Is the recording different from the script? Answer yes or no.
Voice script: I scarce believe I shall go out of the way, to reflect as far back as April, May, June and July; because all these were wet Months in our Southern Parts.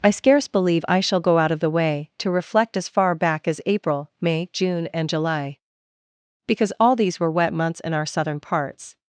no